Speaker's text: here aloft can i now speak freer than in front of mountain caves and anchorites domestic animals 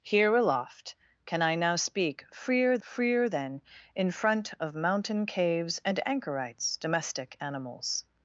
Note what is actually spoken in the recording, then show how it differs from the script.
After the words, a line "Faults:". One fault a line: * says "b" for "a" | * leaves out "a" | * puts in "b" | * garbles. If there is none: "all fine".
here aloft can i now speak freer freer than in front of mountain caves and anchorites domestic animals
Faults:
* puts in "freer"